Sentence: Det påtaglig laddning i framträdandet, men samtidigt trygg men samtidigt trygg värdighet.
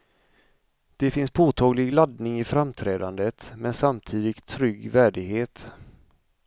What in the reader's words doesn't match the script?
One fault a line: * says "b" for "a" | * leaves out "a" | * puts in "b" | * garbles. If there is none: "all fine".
* puts in "finns"
* leaves out "men samtidigt trygg"